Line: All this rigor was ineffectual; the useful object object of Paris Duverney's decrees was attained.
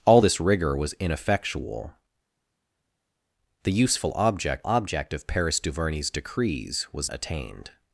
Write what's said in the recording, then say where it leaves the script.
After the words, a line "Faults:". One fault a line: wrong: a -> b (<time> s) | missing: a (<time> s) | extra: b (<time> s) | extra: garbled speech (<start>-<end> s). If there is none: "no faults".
All this rigor was ineffectual; the useful object object of Paris Duverney's decrees was attained.
Faults:
no faults